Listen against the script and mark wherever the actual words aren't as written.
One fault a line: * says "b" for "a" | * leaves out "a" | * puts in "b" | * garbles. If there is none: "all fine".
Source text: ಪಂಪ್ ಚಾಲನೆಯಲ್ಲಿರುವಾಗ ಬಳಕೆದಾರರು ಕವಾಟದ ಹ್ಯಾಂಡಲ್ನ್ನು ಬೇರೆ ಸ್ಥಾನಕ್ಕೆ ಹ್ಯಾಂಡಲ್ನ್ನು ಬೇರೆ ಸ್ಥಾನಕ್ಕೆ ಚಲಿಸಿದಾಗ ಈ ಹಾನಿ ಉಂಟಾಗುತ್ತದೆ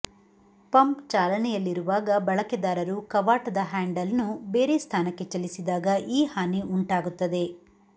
* leaves out "ಹ್ಯಾಂಡಲ್ನ್ನು ಬೇರೆ ಸ್ಥಾನಕ್ಕೆ"